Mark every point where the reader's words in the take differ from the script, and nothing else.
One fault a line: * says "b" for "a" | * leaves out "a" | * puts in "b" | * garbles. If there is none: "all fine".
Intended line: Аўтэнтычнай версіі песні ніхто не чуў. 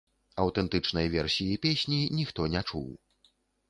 all fine